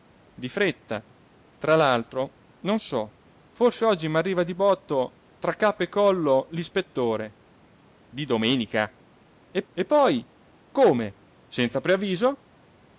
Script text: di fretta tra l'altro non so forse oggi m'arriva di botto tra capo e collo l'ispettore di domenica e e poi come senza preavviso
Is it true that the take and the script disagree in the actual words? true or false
false